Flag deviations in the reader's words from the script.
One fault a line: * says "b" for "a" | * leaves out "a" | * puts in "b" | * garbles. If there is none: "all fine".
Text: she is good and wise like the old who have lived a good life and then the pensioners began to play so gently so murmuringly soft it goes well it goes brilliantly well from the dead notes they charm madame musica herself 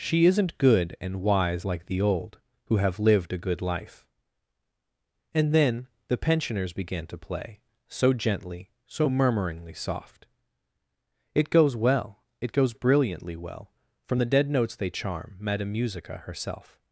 * says "isn't" for "is"